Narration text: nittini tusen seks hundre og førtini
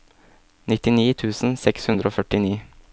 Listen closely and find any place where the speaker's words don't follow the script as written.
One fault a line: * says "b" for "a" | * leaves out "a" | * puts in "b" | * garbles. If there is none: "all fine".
all fine